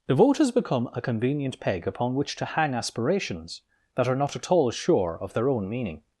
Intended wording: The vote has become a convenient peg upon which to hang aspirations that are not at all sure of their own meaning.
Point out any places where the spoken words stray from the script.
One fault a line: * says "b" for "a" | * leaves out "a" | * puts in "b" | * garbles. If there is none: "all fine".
all fine